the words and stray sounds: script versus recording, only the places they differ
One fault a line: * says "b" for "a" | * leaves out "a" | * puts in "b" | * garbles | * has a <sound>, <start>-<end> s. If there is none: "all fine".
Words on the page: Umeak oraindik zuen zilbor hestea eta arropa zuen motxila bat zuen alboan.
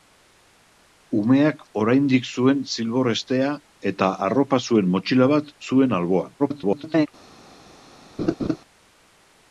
* garbles
* has a laugh, 8.2-8.6 s